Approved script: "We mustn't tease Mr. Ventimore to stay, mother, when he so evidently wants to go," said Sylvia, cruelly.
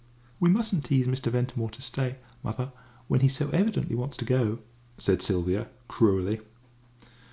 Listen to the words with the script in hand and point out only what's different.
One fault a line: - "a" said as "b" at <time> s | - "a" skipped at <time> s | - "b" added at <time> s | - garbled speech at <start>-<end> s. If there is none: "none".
none